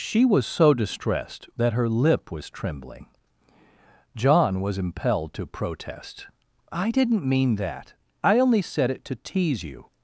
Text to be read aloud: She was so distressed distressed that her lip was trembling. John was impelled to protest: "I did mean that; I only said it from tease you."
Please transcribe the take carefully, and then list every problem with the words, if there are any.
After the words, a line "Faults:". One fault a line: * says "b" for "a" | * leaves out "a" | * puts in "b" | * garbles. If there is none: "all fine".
She was so distressed that her lip was trembling. John was impelled to protest: "I didn't mean that; I only said it to tease you."
Faults:
* leaves out "distressed"
* says "didn't" for "did"
* says "to" for "from"